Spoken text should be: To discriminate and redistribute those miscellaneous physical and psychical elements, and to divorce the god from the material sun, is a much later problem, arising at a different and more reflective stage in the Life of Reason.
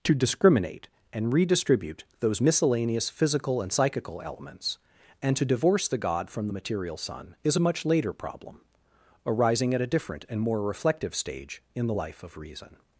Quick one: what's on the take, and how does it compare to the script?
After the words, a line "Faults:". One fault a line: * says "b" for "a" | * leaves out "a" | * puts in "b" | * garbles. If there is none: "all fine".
To discriminate and redistribute those miscellaneous physical and psychical elements, and to divorce the god from the material sun, is a much later problem, arising at a different and more reflective stage in the Life of Reason.
Faults:
all fine